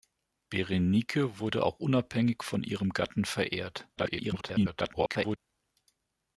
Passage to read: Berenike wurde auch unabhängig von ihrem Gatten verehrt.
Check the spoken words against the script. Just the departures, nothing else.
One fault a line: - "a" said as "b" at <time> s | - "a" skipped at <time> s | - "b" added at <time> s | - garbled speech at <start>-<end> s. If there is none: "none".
- garbled speech at 4.0-5.4 s